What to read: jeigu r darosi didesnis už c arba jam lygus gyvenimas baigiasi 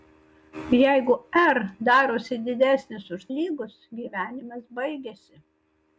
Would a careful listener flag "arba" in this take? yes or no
yes